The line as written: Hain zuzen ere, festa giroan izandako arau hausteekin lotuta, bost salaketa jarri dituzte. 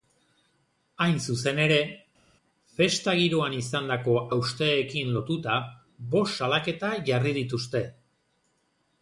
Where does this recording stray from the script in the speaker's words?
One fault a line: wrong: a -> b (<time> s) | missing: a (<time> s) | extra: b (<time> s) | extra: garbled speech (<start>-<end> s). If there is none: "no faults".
missing: arau (4.1 s)